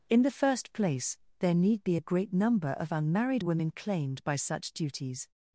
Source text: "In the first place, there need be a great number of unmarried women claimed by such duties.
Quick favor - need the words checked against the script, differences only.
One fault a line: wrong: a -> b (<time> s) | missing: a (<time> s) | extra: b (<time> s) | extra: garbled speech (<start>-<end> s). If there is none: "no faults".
no faults